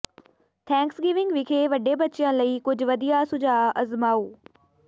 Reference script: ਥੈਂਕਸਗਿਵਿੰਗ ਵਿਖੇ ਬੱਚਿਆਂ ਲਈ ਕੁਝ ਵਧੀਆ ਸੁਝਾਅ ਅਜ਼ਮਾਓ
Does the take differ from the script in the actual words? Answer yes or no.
yes